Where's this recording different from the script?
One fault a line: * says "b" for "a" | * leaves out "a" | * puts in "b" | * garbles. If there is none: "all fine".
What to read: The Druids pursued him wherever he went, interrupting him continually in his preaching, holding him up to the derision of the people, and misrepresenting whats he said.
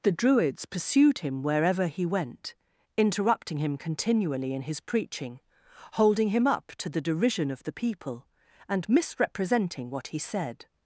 * says "what" for "whats"